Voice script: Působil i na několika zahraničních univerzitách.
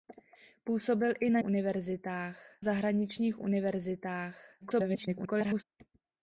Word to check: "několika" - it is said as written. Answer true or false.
false